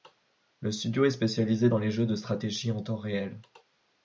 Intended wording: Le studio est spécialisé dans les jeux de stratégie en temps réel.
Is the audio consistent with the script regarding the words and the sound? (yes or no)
yes